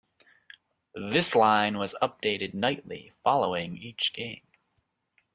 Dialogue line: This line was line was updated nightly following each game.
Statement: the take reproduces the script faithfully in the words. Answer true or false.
false